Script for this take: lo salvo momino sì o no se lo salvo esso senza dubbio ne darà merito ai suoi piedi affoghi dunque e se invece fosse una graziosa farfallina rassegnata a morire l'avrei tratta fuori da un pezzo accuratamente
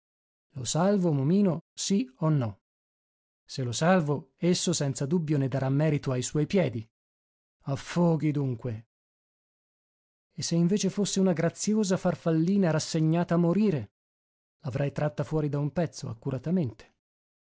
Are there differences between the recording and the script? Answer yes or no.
no